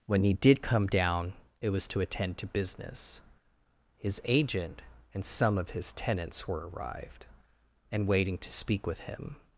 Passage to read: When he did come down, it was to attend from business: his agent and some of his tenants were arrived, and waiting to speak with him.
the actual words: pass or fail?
fail